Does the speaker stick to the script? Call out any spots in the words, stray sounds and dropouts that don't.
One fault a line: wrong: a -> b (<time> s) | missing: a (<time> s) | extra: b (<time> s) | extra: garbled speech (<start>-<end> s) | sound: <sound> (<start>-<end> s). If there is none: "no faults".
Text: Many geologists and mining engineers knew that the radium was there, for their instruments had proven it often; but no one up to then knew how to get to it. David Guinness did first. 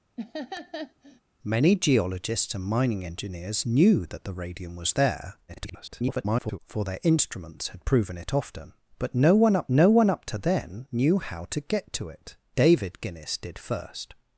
sound: laugh (0.2-1.2 s)
extra: garbled speech (5.5-6.6 s)
extra: no one up (9.7 s)